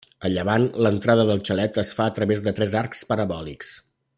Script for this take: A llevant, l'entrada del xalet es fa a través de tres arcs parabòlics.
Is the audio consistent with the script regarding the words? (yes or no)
yes